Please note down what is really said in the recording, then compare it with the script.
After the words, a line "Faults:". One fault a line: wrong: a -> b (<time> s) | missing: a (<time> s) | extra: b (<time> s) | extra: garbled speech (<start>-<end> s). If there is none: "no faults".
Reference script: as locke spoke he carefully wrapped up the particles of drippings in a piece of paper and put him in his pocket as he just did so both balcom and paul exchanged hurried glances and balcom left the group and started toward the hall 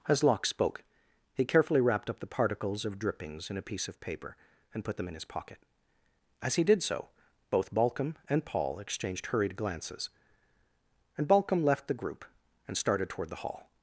as locke spoke he carefully wrapped up the particles of drippings in a piece of paper and put them in his pocket as he did so both balcom and paul exchanged hurried glances and balcom left the group and started toward the hall
Faults:
wrong: him -> them (5.0 s)
missing: just (6.6 s)